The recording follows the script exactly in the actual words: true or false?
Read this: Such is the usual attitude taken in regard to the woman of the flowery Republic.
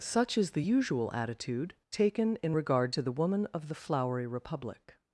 true